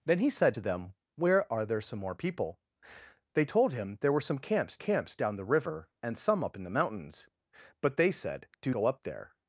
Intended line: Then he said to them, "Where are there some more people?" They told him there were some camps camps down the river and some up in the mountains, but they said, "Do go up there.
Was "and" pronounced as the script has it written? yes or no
yes